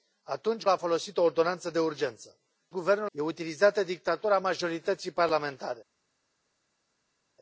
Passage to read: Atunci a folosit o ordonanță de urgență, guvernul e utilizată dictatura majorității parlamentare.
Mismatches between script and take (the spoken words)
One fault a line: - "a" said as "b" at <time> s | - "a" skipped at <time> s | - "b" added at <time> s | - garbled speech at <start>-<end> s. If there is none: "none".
none